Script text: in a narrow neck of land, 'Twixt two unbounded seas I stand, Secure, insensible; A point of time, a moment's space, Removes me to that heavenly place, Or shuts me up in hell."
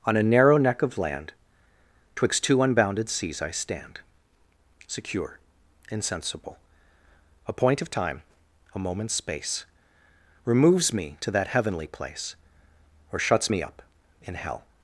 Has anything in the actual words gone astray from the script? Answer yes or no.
yes